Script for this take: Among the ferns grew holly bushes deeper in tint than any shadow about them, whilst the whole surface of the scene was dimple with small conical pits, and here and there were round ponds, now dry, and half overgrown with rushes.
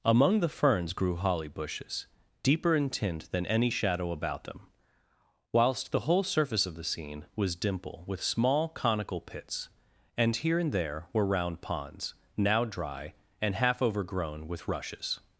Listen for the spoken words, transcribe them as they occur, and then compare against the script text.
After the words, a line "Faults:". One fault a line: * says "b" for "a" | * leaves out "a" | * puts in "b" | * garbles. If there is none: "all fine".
Among the ferns grew holly bushes deeper in tint than any shadow about them, whilst the whole surface of the scene was dimple with small conical pits, and here and there were round ponds, now dry, and half overgrown with rushes.
Faults:
all fine